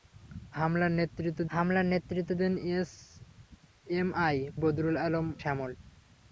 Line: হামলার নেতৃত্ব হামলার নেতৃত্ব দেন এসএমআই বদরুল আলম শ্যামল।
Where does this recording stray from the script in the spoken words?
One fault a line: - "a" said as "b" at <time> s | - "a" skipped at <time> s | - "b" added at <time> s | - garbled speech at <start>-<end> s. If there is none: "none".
none